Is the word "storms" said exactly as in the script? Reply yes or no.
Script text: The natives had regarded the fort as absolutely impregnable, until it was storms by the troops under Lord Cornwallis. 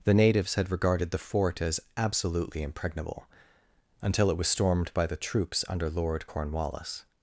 no